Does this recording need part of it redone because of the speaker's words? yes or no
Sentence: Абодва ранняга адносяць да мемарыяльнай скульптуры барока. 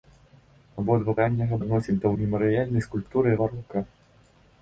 no